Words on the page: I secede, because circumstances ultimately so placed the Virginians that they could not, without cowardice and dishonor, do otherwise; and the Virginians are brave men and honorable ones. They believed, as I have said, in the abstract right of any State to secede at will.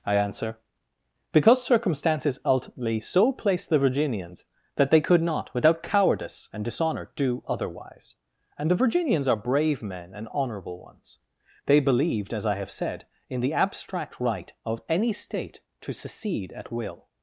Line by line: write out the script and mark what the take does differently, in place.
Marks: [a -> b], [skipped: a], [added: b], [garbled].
I [secede, -> answer] because circumstances ultimately so placed the Virginians that they could not, without cowardice and dishonor, do otherwise; and the Virginians are brave men and honorable ones. They believed, as I have said, in the abstract right of any State to secede at will.